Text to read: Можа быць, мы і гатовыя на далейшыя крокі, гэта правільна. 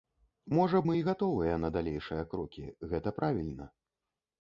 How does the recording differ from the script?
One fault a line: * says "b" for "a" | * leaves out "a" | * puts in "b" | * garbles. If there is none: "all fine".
* leaves out "быць"